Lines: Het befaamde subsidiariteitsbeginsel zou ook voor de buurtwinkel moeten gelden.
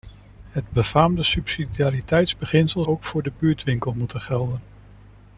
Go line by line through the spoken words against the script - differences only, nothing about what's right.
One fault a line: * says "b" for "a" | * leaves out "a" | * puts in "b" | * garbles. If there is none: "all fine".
* leaves out "zou"